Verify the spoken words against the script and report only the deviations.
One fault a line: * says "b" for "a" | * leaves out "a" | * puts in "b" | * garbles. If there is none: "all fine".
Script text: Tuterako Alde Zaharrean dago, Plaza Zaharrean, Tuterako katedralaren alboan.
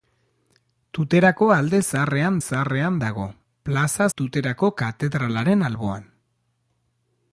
* puts in "Zaharrean"
* leaves out "Zaharrean"